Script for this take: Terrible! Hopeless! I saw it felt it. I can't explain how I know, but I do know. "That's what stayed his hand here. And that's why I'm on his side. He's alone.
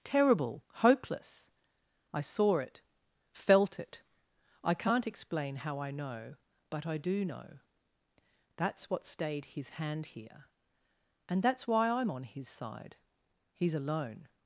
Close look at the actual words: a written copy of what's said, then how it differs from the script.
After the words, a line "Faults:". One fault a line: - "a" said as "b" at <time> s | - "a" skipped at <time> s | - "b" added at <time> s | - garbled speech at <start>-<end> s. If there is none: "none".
Terrible! Hopeless! I saw it felt it. I can't explain how I know, but I do know. "That's what stayed his hand here. And that's why I'm on his side. He's alone.
Faults:
none